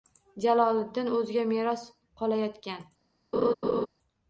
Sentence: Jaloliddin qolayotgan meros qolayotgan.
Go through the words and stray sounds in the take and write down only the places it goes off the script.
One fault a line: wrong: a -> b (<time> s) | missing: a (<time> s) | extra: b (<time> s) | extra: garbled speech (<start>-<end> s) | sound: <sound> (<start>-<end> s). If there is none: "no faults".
wrong: qolayotgan -> o‘ziga (1.2 s)
sound: laugh (3.3-3.9 s)